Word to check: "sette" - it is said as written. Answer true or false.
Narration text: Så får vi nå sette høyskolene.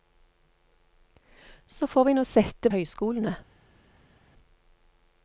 true